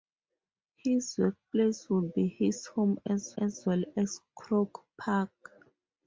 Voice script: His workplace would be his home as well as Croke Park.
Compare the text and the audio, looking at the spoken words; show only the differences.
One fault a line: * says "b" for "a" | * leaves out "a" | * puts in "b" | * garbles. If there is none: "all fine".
* puts in "as"